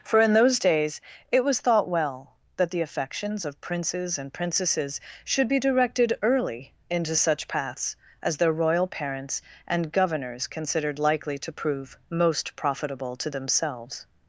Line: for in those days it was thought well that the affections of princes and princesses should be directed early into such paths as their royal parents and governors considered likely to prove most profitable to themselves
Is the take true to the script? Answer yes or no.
yes